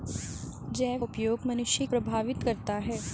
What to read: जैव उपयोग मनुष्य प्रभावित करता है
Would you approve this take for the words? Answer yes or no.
yes